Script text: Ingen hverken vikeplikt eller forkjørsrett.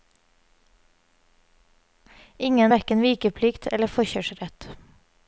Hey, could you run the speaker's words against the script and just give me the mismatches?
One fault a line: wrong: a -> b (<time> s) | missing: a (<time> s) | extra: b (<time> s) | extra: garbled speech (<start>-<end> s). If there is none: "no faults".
no faults